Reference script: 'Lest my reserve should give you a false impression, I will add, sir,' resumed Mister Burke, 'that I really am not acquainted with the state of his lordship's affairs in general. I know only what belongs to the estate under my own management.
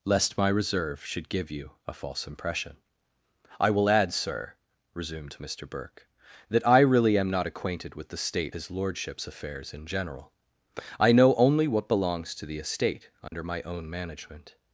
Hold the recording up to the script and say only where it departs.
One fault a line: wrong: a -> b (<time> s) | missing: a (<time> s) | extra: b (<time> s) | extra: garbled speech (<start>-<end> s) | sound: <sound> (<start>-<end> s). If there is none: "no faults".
missing: of (8.6 s)
sound: dropout (13.3-13.3 s)